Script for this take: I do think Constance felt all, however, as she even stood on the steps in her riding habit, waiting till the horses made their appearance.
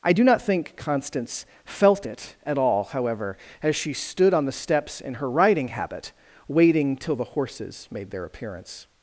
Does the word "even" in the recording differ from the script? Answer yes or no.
yes